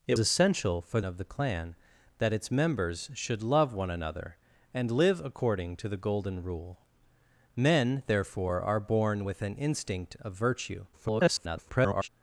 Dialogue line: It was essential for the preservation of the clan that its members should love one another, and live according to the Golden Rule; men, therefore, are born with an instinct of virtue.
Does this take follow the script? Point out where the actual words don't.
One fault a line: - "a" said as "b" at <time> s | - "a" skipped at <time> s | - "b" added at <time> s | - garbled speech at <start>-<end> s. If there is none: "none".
- "was" skipped at 0.2 s
- "the preservation" skipped at 1.0 s
- garbled speech at 10.9-12.1 s